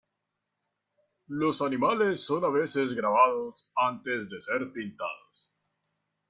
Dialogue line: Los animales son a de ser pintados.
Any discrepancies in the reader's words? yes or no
yes